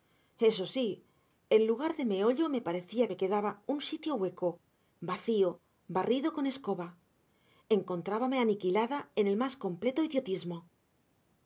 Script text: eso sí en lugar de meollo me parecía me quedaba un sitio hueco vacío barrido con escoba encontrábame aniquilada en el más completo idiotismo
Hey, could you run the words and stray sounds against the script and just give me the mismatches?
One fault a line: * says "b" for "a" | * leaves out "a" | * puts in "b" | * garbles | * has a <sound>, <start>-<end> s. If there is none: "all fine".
all fine